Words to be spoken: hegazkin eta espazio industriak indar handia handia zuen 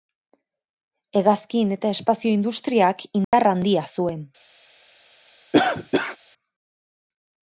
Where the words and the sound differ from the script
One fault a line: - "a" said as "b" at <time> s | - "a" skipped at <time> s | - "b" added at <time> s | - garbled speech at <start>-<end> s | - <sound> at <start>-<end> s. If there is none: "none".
- dropout at 3.2-3.3 s
- "handia" skipped at 3.9 s
- cough at 5.5-6.2 s